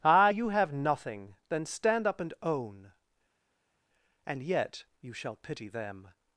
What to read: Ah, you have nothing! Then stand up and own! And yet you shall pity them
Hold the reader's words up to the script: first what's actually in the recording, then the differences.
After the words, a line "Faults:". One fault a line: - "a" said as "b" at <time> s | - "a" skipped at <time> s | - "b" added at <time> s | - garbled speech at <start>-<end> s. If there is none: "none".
Ah, you have nothing! Then stand up and own! And yet you shall pity them
Faults:
none